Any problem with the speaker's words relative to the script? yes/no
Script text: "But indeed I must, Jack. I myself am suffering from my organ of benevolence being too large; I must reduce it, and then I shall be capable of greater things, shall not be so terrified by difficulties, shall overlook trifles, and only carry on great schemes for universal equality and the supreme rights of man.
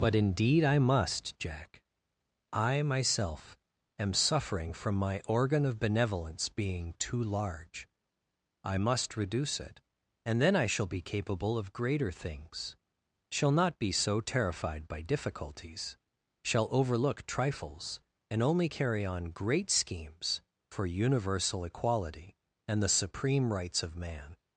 no